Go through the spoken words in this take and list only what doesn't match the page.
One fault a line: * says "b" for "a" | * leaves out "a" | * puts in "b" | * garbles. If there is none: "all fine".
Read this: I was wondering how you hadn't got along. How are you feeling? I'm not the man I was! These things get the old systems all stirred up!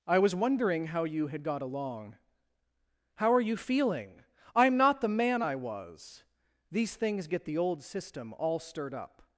* says "had" for "hadn't"
* says "system" for "systems"